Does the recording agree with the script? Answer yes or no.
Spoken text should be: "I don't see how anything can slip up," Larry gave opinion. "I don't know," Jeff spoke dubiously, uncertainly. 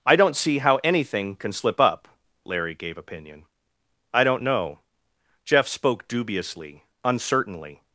yes